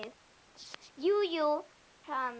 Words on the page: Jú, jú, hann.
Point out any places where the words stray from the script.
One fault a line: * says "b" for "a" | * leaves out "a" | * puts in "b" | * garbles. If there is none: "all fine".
all fine